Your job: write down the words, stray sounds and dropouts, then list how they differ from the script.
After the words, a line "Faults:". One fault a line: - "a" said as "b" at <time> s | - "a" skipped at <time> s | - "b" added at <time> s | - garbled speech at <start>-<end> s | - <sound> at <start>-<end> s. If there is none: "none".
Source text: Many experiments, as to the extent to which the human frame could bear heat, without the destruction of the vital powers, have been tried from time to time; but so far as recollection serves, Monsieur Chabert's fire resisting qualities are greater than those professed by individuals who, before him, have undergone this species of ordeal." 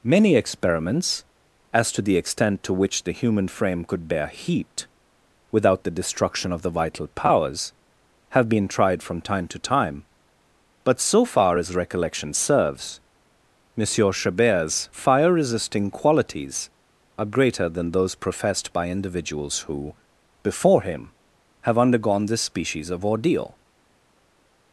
Many experiments, as to the extent to which the human frame could bear heat, without the destruction of the vital powers, have been tried from time to time; but so far as recollection serves, Monsieur Chabert's fire resisting qualities are greater than those professed by individuals who, before him, have undergone this species of ordeal."
Faults:
none